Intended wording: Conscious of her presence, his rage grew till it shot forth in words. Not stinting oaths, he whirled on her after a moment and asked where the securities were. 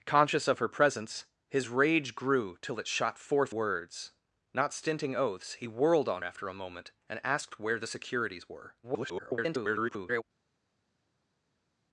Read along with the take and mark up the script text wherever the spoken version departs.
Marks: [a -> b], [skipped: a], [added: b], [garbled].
Conscious of her presence, his rage grew till it shot forth [skipped: in] words. Not stinting oaths, he whirled on [skipped: her] after a moment and asked where the securities were. [garbled]